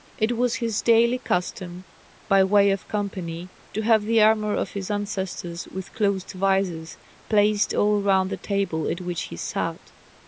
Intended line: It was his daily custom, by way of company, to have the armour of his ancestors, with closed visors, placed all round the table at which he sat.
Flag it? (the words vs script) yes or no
no